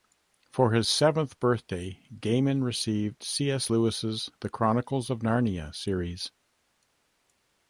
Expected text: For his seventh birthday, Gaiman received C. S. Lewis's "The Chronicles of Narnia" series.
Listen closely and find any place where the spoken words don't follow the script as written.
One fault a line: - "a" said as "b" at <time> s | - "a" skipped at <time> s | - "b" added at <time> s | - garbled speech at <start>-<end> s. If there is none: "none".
none